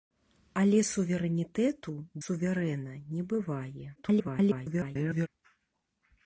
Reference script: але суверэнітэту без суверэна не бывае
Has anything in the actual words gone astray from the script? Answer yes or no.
yes